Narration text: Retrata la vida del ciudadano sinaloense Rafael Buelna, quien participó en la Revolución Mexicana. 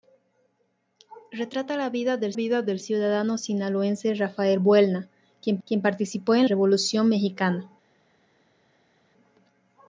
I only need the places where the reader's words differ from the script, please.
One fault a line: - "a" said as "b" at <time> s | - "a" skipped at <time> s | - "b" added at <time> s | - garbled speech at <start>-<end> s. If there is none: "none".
- "vida del" added at 2.3 s
- "quien" added at 5.7 s
- "la" skipped at 6.5 s